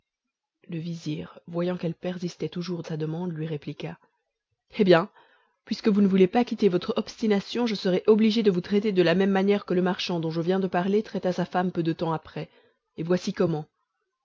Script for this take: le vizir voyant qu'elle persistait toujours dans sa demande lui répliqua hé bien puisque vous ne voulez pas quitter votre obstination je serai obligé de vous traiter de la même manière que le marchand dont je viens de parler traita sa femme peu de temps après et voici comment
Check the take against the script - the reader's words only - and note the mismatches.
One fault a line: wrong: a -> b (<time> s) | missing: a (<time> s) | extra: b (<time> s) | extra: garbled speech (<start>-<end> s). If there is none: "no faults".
missing: dans (2.8 s)